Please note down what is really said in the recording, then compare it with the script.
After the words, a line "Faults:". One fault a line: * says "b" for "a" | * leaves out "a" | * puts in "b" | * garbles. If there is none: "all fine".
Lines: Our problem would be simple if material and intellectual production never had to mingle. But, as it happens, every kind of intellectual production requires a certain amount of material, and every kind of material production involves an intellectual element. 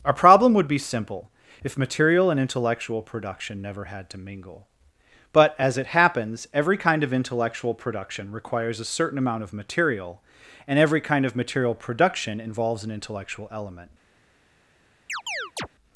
Our problem would be simple if material and intellectual production never had to mingle. But, as it happens, every kind of intellectual production requires a certain amount of material, and every kind of material production involves an intellectual element.
Faults:
all fine